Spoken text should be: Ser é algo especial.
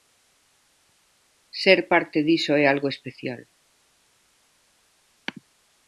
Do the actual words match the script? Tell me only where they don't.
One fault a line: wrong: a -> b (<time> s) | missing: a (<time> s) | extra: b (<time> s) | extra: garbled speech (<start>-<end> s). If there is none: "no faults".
extra: parte diso (1.9 s)